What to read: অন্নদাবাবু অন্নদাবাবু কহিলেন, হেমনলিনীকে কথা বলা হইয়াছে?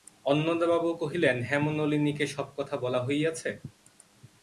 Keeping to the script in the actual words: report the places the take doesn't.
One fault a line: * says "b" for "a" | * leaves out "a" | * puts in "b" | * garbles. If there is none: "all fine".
* leaves out "অন্নদাবাবু"
* puts in "সব"